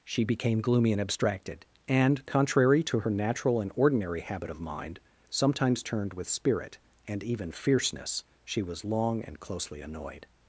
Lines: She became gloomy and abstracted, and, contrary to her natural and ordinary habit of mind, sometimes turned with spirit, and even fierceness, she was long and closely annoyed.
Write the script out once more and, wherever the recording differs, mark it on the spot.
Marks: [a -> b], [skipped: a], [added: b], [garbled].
She became gloomy and abstracted, and, contrary to her natural and ordinary habit of mind, sometimes turned with spirit, and even fierceness, she was long and closely annoyed.